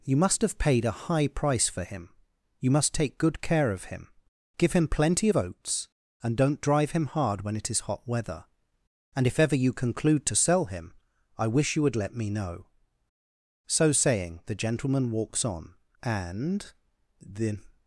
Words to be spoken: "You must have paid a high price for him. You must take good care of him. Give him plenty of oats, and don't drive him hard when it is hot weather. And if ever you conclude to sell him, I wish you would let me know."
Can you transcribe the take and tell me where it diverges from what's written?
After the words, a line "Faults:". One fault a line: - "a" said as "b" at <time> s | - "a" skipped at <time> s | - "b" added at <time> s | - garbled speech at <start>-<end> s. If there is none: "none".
"You must have paid a high price for him. You must take good care of him. Give him plenty of oats, and don't drive him hard when it is hot weather. And if ever you conclude to sell him, I wish you would let me know." So saying, the gentleman walks on, and the
Faults:
- "So saying the gentleman walks on and the" added at 13.7 s